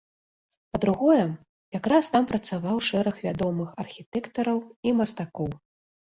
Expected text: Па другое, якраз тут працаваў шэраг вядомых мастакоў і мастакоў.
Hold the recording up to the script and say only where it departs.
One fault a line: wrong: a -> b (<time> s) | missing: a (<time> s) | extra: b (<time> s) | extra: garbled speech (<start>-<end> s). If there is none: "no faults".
wrong: тут -> там (2.1 s)
wrong: мастакоў -> архітэктараў (3.8 s)